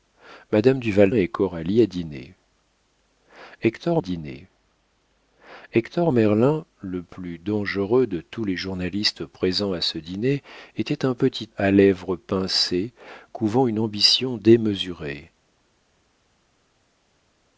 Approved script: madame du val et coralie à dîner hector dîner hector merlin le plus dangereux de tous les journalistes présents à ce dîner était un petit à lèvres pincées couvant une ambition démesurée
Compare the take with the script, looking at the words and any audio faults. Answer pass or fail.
pass